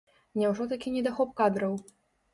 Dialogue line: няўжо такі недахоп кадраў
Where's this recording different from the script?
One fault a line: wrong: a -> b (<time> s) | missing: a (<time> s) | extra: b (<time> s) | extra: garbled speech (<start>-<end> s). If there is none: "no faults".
no faults